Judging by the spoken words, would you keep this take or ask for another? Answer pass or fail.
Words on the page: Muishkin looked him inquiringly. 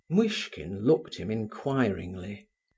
pass